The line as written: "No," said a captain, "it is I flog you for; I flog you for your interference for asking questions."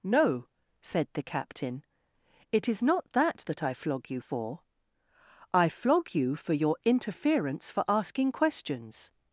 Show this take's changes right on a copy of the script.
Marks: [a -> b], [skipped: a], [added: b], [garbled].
"No," said [a -> the] captain, "it is [added: not that that] I flog you for; I flog you for your interference for asking questions."